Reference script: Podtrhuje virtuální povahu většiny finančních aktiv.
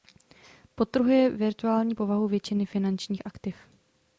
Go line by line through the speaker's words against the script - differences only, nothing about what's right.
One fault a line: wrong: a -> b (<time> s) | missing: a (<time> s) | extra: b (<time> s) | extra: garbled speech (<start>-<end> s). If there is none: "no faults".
no faults